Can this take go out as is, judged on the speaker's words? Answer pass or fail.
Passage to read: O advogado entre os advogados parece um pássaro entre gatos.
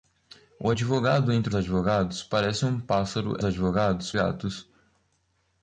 fail